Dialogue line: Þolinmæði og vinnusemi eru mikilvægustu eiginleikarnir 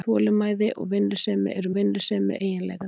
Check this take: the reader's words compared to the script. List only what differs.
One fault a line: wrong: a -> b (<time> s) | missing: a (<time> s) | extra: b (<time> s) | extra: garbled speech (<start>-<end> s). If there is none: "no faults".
wrong: mikilvægustu -> vinnusemi (1.8 s)